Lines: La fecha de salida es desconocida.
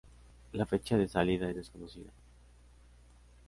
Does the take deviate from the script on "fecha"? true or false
false